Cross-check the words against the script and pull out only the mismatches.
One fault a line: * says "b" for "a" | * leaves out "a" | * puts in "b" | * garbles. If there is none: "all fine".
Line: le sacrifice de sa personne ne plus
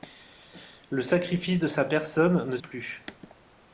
all fine